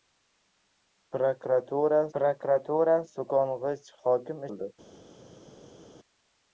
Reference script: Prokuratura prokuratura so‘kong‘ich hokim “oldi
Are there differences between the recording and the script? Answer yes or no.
no